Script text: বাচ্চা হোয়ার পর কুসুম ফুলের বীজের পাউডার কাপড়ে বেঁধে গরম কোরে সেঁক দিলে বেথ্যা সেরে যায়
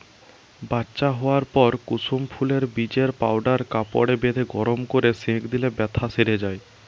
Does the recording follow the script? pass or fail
pass